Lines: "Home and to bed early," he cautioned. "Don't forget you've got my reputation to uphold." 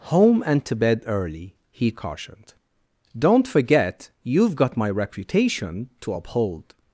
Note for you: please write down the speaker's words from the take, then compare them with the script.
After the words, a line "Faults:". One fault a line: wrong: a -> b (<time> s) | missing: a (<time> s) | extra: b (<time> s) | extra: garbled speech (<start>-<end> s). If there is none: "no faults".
"Home and to bed early," he cautioned. "Don't forget you've got my reputation to uphold."
Faults:
no faults